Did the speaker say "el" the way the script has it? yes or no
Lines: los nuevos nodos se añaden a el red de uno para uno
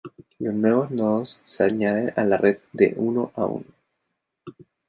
no